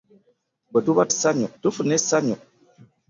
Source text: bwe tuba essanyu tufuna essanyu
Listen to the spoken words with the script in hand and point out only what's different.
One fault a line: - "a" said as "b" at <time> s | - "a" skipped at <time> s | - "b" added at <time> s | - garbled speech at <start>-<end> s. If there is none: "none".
none